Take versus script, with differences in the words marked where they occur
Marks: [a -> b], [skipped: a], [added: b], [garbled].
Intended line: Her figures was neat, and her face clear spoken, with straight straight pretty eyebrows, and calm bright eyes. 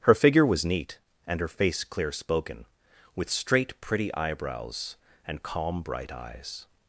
Her [figures -> figure] was neat, and her face clear spoken, with straight [skipped: straight] pretty eyebrows, and calm bright eyes.